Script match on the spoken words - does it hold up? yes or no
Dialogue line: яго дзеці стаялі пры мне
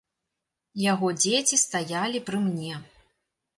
yes